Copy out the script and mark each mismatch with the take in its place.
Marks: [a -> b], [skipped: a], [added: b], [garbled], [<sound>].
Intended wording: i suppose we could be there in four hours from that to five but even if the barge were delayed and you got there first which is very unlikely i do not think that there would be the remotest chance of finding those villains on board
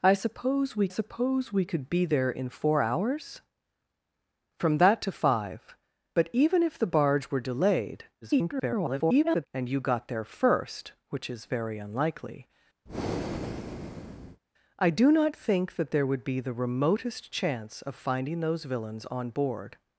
i suppose we [added: suppose we] could be there in four hours from that to five but even if the barge were delayed [garbled] and you got there first which is very unlikely [breath] i do not think that there would be the remotest chance of finding those villains on board